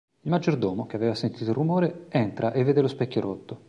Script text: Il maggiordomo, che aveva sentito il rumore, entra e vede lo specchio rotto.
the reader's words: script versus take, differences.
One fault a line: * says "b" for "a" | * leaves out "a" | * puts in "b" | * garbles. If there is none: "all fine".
all fine